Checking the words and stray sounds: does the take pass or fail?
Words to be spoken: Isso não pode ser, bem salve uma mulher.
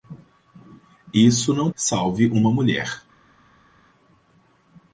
fail